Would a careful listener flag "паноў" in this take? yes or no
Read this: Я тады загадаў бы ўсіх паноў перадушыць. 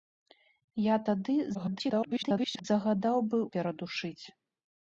yes